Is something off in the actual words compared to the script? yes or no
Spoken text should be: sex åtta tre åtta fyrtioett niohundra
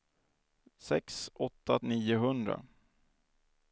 yes